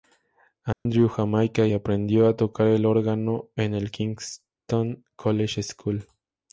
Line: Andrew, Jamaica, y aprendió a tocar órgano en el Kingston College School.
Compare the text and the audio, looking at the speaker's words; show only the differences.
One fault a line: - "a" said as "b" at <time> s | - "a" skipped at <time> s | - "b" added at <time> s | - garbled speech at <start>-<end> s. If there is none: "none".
- "el" added at 2.7 s